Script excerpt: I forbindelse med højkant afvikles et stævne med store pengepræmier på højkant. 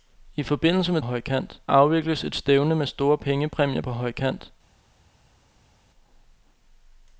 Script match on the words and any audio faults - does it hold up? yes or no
yes